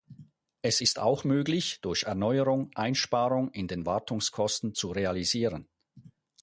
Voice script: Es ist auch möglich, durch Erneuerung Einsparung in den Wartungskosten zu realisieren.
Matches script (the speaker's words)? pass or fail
pass